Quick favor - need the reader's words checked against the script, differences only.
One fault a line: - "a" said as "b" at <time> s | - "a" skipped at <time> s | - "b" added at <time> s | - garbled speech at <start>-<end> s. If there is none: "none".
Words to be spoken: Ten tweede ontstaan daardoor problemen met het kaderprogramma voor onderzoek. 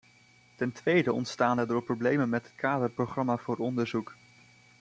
none